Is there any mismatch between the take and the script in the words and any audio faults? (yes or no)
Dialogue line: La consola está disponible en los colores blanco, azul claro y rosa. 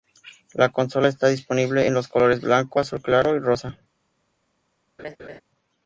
yes